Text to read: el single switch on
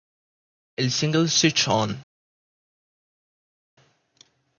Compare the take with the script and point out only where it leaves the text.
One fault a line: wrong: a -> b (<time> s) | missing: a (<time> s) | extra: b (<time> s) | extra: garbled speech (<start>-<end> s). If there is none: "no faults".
no faults